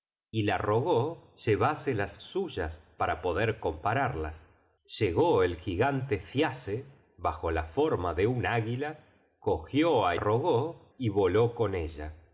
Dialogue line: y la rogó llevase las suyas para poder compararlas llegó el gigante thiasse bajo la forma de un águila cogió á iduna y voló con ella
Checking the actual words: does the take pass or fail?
fail